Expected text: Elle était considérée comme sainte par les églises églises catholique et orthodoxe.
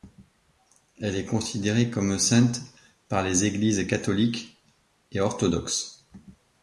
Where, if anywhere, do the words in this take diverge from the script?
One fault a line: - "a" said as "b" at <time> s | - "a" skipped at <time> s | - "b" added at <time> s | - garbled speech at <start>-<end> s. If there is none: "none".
- "était" said as "est" at 1.1 s
- "églises" skipped at 3.9 s